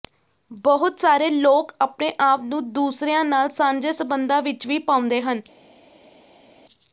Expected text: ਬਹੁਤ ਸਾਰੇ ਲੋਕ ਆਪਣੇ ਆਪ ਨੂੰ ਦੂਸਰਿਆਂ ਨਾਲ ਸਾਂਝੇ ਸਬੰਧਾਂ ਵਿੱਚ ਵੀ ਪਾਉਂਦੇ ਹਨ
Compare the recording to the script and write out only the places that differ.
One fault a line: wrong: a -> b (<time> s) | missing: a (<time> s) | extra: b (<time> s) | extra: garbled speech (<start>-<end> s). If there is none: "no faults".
no faults